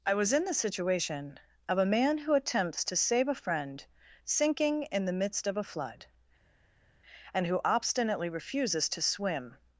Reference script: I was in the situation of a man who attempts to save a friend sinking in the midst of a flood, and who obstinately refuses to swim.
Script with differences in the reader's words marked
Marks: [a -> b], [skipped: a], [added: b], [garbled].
I was in the situation of a man who attempts to save a friend sinking in the midst of a flood, and who obstinately refuses to swim.